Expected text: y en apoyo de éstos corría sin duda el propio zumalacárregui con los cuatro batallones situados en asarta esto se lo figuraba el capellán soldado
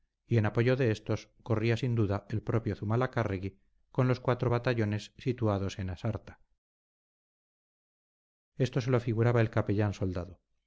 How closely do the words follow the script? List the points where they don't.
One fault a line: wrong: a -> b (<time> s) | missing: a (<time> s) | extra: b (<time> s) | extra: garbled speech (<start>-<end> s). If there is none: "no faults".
no faults